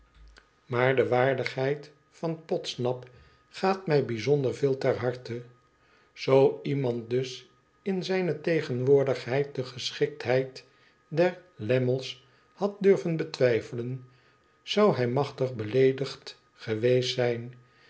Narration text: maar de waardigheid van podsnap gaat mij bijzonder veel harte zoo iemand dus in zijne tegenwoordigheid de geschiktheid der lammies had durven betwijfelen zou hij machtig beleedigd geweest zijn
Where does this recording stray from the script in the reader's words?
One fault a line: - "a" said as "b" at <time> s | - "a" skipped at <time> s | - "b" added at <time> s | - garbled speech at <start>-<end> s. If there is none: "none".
- "ter" added at 4.8 s